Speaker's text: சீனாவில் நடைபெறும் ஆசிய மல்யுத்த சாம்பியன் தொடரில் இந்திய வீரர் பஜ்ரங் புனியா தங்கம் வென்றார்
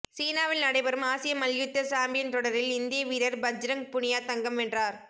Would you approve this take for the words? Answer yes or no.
yes